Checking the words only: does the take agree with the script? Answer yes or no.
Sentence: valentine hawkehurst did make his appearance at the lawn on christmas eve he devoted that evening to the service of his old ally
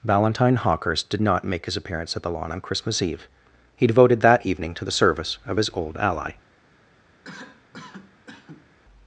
no